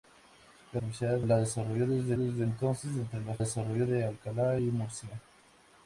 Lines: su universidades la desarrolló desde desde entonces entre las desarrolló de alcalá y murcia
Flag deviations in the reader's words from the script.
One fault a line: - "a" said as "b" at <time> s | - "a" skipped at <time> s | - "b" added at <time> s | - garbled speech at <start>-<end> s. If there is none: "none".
none